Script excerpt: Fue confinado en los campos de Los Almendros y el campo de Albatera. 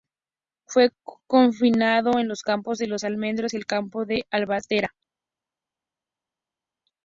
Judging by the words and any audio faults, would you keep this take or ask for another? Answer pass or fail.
pass